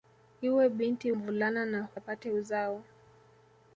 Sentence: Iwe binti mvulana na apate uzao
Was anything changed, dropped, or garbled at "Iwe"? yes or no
no